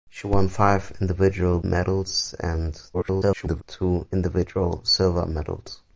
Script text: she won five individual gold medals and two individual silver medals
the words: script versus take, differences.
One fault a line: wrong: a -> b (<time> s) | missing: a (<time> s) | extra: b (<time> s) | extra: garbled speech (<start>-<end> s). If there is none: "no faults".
missing: gold (1.6 s)
extra: garbled speech (2.9-3.6 s)